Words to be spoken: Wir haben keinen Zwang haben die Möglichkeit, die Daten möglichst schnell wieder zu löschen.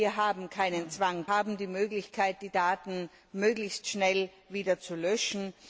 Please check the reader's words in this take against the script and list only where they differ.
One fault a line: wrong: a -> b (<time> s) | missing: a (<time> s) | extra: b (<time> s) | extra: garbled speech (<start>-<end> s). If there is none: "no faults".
no faults